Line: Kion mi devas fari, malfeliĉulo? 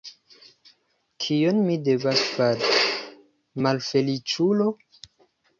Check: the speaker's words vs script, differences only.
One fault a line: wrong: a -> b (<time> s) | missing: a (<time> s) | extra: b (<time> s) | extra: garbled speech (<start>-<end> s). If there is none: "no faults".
no faults